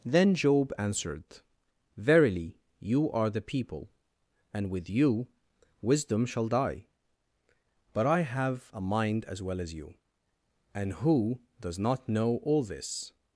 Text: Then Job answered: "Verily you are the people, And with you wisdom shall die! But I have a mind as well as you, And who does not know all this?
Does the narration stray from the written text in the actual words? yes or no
no